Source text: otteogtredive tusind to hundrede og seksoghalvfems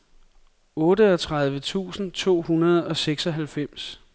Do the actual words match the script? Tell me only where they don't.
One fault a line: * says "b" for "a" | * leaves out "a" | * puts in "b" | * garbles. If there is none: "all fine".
all fine